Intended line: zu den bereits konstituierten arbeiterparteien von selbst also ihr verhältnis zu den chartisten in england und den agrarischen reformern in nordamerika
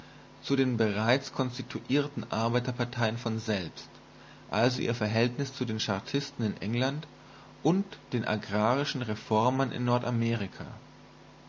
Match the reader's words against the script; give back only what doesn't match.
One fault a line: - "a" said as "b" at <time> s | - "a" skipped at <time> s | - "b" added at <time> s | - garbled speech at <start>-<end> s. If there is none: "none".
none